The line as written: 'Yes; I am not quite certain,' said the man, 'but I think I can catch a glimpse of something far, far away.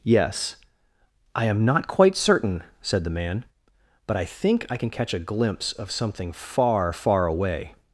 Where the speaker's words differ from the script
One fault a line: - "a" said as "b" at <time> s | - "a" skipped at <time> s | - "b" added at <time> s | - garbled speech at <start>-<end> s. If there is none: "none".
none